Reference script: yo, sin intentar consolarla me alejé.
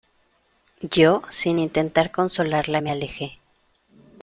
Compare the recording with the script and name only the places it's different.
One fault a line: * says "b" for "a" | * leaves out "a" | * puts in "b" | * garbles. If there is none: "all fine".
all fine